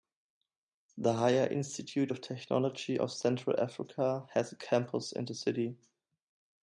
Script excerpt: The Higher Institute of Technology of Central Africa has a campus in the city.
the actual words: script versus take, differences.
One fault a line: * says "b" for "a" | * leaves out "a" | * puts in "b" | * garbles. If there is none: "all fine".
all fine